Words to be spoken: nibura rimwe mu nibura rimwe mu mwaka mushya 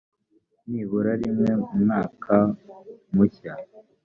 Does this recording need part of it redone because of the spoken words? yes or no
yes